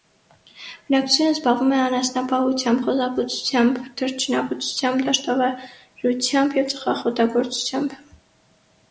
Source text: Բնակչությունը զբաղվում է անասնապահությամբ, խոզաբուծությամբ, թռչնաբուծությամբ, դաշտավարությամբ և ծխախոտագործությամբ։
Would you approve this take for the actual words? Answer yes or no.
yes